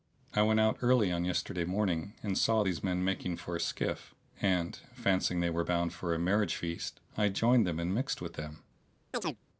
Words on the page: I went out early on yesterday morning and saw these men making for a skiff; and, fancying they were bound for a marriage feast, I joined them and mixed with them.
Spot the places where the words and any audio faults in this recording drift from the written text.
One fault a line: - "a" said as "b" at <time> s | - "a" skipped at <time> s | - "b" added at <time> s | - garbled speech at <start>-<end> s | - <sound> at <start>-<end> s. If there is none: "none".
- chirp at 9.1-9.4 s